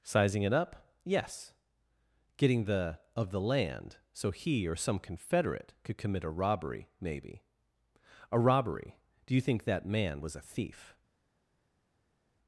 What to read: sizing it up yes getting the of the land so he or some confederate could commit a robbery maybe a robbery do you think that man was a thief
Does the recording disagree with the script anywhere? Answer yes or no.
no